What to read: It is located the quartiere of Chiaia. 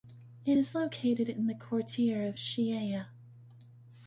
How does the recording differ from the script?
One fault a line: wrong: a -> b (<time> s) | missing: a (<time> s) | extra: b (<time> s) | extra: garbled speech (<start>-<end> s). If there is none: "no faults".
extra: in (1.3 s)